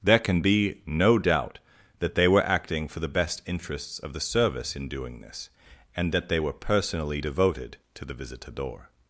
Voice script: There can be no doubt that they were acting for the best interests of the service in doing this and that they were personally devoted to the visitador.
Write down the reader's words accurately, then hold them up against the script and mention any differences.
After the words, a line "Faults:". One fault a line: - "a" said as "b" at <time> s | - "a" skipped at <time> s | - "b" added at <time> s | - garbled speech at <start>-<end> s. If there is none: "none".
There can be no doubt that they were acting for the best interests of the service in doing this and that they were personally devoted to the visitador.
Faults:
none